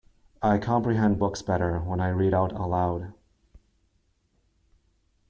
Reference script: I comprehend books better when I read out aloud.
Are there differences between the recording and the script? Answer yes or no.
no